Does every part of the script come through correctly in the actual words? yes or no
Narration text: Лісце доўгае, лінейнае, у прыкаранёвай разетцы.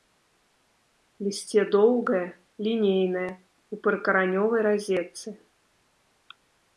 yes